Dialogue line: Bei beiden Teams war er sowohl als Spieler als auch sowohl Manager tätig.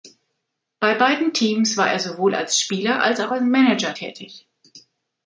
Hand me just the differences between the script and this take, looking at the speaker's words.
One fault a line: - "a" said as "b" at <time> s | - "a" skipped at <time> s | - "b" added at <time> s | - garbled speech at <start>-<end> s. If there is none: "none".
- "sowohl" said as "als" at 3.3 s